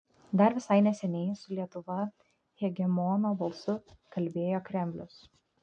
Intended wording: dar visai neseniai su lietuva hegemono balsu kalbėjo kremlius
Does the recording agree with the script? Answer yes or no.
yes